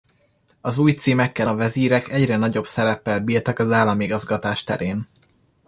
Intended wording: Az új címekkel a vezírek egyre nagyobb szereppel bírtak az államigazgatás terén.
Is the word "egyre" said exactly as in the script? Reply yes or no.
yes